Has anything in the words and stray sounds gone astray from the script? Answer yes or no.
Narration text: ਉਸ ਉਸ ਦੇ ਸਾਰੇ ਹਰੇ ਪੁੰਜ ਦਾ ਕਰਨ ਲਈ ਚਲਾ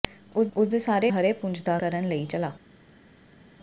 no